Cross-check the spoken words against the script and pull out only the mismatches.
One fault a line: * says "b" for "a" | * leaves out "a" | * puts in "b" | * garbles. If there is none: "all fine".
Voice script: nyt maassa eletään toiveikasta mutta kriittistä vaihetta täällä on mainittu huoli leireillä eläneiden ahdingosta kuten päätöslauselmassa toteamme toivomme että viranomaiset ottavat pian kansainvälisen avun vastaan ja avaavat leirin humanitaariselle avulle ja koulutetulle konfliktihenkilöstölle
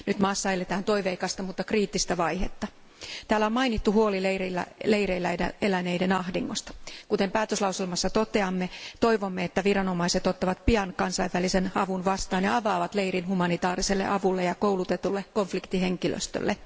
all fine